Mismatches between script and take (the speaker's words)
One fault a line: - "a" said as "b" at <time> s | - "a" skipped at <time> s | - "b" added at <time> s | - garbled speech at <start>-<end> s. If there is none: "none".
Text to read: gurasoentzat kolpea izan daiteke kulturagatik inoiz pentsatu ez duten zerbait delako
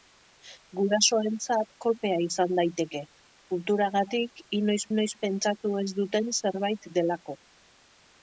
- "inoiz" added at 4.9 s